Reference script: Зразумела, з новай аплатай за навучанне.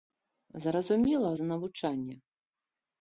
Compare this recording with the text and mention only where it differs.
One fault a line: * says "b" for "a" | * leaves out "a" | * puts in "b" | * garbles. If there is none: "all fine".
* leaves out "з новай аплатай"